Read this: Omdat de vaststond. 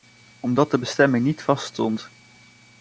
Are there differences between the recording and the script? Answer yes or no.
yes